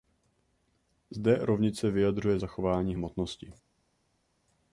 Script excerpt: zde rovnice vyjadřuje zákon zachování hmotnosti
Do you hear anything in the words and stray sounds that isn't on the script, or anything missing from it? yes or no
yes